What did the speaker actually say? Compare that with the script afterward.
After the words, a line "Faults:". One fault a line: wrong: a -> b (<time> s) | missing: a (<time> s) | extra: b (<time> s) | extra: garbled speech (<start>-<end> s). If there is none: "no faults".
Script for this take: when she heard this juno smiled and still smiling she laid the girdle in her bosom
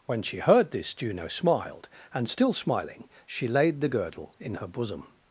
when she heard this juno smiled and still smiling she laid the girdle in her bosom
Faults:
no faults